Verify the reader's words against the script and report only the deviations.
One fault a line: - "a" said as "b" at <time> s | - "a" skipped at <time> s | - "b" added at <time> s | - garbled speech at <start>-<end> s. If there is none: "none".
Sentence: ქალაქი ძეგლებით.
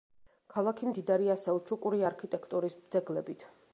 - "მდიდარია სელჩუკური არქიტექტურის" added at 0.9 s